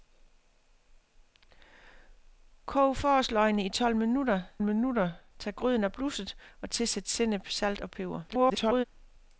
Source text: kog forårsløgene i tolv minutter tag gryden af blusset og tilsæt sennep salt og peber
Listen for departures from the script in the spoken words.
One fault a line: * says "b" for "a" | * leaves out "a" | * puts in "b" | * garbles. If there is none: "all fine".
* puts in "minutter"
* garbles